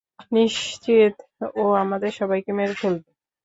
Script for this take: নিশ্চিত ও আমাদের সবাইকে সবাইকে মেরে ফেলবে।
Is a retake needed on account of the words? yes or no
yes